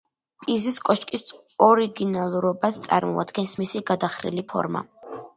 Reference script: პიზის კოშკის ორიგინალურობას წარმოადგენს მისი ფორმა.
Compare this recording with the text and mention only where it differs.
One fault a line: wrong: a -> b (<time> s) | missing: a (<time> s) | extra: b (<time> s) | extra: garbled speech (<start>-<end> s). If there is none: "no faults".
extra: გადახრილი (3.9 s)